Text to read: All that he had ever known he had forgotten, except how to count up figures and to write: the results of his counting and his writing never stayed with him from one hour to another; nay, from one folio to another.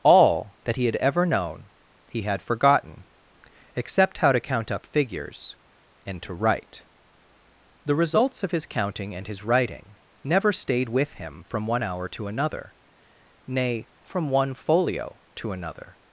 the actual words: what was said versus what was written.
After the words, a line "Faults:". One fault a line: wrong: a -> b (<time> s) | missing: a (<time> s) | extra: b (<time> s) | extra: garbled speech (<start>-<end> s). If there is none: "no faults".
All that he had ever known he had forgotten, except how to count up figures and to write: the results of his counting and his writing never stayed with him from one hour to another; nay, from one folio to another.
Faults:
no faults